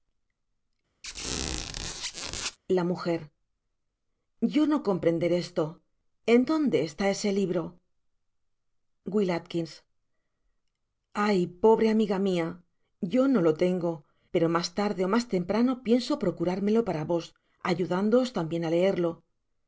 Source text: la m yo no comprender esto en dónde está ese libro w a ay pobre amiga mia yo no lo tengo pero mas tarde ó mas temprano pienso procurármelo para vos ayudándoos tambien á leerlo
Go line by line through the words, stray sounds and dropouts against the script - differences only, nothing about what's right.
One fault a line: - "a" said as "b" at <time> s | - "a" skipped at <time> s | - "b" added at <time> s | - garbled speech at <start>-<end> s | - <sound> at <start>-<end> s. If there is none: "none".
- squeak at 1.0-2.6 s